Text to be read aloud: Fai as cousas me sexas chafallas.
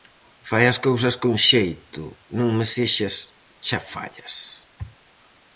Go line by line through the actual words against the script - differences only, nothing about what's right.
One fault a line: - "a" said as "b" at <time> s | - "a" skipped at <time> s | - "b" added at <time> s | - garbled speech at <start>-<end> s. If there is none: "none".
- "con xeito non" added at 1.2 s